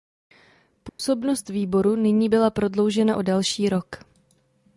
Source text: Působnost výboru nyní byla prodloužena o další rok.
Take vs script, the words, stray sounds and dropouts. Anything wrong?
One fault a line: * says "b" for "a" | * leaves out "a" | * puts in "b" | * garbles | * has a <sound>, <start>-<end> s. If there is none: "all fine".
* has a dropout, 0.9-1.0 s